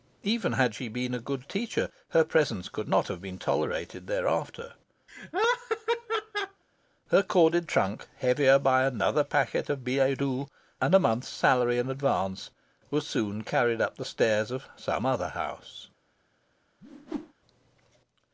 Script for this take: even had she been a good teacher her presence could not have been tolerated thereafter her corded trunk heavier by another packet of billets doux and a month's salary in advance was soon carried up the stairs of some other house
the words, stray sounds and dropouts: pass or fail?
fail